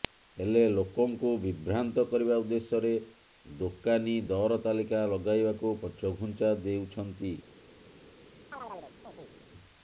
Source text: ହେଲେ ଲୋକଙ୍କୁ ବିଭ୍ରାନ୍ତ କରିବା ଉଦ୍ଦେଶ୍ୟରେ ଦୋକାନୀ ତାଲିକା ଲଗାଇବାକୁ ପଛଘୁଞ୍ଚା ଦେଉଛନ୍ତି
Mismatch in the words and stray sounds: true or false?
true